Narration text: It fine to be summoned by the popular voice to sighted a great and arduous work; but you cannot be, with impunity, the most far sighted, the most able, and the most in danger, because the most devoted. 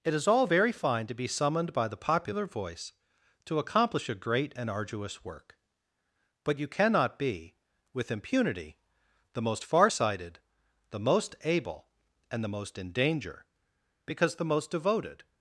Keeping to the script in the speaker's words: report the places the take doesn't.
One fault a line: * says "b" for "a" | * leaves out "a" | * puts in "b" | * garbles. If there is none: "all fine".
* puts in "is all very"
* says "accomplish" for "sighted"